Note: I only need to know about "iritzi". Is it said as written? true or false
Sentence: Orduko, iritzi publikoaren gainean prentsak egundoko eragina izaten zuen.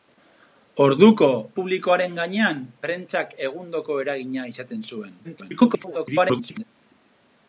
false